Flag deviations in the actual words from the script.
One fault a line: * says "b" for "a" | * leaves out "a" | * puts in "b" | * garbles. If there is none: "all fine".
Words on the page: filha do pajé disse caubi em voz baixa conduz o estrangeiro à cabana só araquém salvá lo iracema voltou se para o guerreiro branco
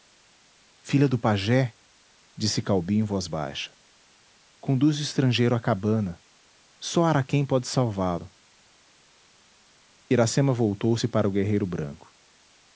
* puts in "pode"